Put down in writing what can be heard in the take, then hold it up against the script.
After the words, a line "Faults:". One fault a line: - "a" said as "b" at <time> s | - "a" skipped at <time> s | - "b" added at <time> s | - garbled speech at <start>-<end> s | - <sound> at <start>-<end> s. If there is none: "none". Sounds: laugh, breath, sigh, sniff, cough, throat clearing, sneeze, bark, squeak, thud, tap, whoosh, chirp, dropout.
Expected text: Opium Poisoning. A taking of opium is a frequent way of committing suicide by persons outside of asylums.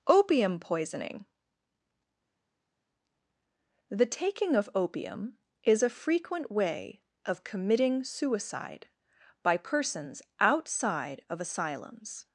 Opium Poisoning. The taking of opium is a frequent way of committing suicide by persons outside of asylums.
Faults:
- "A" said as "The" at 3.9 s